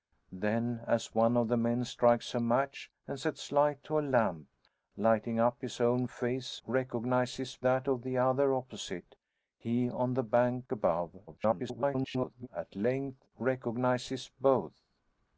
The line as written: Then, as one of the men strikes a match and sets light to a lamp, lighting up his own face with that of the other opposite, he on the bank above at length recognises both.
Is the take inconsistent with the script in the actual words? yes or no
yes